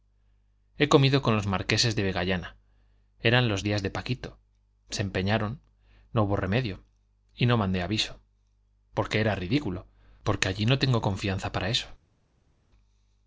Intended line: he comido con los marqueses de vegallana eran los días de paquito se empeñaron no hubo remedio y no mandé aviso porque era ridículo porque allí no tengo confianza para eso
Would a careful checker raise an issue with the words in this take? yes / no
no